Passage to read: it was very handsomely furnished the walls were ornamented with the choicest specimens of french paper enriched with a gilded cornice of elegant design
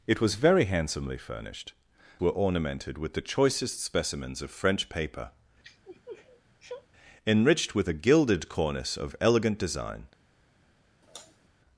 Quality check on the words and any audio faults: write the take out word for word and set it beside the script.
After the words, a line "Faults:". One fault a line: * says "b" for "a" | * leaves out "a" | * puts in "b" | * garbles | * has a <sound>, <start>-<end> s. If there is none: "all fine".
it was very handsomely furnished were ornamented with the choicest specimens of french paper enriched with a gilded cornice of elegant design
Faults:
* leaves out "the walls"
* has a sniff, 5.6-6.9 s
* has a sigh, 11.0-11.5 s